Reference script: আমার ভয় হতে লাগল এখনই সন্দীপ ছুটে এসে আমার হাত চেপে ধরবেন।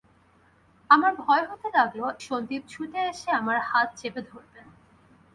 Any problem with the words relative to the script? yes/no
yes